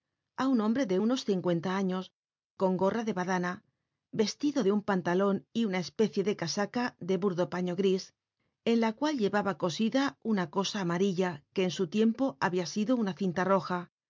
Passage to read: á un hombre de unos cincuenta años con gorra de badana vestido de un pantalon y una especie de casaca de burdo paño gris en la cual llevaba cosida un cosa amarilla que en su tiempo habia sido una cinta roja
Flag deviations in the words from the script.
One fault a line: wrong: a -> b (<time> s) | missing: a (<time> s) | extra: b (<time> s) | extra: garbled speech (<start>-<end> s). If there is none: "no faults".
wrong: un -> una (10.3 s)